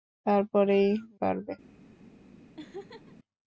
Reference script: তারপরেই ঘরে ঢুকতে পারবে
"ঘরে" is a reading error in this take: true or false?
true